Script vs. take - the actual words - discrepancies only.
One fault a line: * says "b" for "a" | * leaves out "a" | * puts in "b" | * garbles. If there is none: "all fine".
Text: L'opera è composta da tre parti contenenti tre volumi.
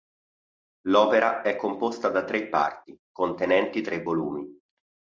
all fine